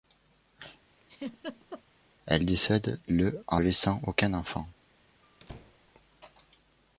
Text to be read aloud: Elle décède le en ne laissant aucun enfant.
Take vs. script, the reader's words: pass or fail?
fail